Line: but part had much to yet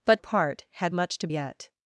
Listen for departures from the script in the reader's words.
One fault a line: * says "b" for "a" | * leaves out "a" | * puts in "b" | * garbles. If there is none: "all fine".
all fine